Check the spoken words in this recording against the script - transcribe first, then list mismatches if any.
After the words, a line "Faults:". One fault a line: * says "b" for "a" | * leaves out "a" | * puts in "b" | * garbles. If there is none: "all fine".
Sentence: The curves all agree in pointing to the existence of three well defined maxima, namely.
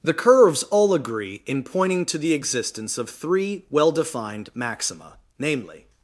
The curves all agree in pointing to the existence of three well defined maxima, namely.
Faults:
all fine